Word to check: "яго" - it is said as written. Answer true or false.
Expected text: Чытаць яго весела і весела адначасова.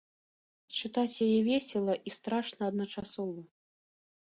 false